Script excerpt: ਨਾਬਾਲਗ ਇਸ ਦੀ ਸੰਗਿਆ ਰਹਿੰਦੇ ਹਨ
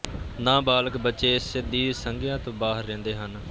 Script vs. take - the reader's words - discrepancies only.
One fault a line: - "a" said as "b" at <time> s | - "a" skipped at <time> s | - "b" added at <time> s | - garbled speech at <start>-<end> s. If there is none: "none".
- "ਬੱਚੇ" added at 1.0 s
- "ਤੋਂ ਬਾਹਰ" added at 2.4 s